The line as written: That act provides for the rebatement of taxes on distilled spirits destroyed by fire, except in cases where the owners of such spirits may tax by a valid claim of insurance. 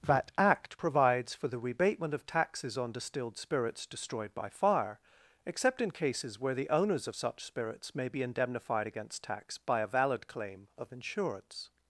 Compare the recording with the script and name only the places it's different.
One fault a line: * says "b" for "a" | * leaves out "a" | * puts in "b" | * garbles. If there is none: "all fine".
* puts in "be indemnified against"